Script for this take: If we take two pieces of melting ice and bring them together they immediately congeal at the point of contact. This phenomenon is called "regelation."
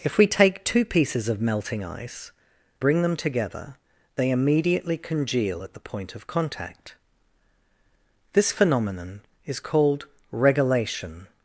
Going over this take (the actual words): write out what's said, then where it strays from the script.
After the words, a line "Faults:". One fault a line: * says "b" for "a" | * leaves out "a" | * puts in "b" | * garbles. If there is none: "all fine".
If we take two pieces of melting ice bring them together they immediately congeal at the point of contact. This phenomenon is called "regelation."
Faults:
* leaves out "and"